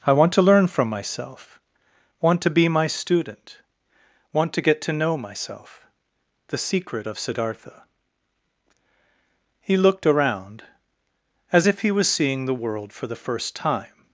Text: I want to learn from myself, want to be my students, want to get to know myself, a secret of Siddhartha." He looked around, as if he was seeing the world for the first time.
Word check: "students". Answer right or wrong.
wrong